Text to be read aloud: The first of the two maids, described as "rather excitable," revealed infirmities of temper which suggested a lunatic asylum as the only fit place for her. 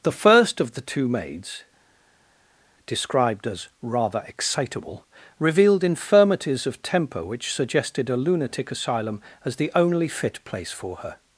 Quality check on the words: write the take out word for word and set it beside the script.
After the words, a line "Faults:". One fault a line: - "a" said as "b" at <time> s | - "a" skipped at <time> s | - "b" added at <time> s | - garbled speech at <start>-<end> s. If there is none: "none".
The first of the two maids, described as "rather excitable," revealed infirmities of temper which suggested a lunatic asylum as the only fit place for her.
Faults:
none